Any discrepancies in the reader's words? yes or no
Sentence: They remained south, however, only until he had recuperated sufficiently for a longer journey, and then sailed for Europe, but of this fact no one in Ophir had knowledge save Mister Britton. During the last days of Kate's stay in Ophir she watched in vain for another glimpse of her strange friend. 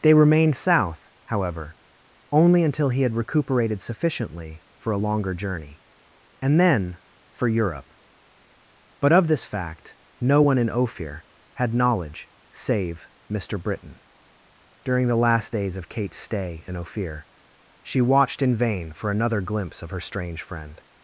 yes